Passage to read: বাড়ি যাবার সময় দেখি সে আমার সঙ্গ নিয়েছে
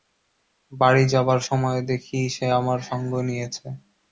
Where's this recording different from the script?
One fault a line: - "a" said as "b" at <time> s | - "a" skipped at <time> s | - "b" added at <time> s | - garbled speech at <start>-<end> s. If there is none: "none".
none